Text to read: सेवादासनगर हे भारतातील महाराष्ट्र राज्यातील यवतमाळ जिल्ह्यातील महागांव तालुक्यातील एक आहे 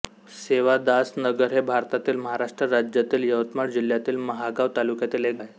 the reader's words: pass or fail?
pass